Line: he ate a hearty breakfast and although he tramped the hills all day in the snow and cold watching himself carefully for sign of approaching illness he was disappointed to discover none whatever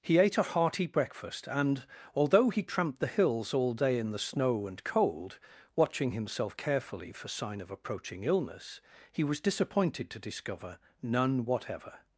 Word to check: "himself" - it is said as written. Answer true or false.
true